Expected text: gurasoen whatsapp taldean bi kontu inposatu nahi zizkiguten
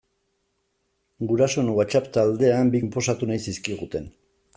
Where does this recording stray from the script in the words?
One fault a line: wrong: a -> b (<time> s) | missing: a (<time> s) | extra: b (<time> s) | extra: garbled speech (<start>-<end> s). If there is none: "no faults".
missing: kontu (2.8 s)